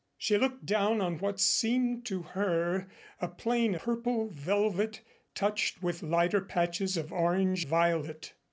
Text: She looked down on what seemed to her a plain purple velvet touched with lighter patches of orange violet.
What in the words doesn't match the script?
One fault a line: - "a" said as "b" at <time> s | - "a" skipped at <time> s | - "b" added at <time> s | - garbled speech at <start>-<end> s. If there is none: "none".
none